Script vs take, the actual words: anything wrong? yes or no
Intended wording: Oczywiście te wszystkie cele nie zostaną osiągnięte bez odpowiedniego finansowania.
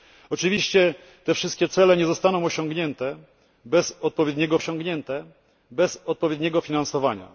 yes